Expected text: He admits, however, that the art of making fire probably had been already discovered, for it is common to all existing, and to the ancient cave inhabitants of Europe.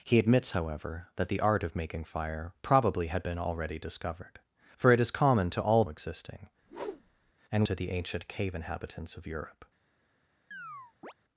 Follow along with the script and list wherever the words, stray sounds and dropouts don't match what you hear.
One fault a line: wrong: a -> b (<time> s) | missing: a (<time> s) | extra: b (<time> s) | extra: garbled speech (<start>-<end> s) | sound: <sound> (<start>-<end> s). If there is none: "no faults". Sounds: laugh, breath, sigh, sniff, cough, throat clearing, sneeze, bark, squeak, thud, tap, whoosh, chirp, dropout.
sound: whoosh (6.6-7.3 s)
sound: chirp (10.5-11.1 s)